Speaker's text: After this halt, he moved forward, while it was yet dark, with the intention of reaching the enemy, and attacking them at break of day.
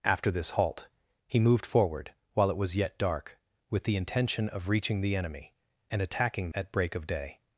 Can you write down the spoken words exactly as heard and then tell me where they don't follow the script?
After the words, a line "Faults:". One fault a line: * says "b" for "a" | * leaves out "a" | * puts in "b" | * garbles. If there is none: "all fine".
After this halt, he moved forward, while it was yet dark, with the intention of reaching the enemy, and attacking at break of day.
Faults:
* leaves out "them"